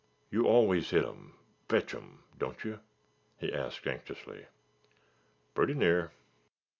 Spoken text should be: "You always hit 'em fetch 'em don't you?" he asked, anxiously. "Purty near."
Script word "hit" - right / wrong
right